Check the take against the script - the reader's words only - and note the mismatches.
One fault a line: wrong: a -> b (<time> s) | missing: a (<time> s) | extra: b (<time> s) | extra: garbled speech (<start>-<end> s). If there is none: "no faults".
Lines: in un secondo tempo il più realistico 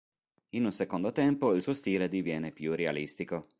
extra: suo stile diviene (1.6 s)